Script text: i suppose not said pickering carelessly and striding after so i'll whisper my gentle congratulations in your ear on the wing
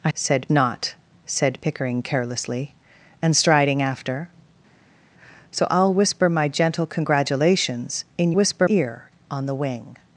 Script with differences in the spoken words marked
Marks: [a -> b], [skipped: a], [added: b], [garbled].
i [suppose -> said] not said pickering carelessly and striding after so i'll whisper my gentle congratulations in [your -> whisper] ear on the wing